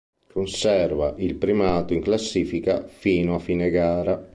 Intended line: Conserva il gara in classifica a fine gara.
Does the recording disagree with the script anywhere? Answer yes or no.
yes